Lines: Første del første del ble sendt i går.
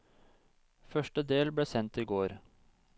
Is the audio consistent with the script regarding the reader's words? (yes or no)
no